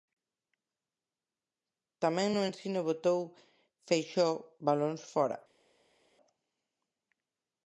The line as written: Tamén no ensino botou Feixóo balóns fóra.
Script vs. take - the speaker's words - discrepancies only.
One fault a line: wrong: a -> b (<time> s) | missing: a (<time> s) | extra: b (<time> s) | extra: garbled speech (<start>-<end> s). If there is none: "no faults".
no faults